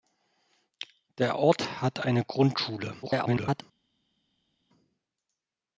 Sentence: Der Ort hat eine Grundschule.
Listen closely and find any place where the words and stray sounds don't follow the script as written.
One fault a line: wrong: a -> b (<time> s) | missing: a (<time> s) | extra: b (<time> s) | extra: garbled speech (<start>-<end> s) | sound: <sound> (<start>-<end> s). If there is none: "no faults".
extra: garbled speech (3.0-3.6 s)